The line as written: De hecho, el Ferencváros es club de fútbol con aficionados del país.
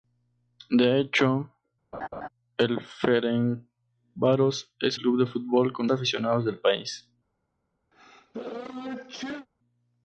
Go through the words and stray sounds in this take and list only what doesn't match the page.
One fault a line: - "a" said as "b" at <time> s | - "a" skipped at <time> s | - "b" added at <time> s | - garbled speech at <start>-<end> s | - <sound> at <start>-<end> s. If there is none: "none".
- laugh at 1.9-2.3 s
- sneeze at 7.9-9.5 s